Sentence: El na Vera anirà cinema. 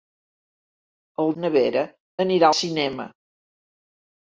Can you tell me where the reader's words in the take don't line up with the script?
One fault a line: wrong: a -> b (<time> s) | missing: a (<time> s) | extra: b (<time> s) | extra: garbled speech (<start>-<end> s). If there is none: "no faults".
no faults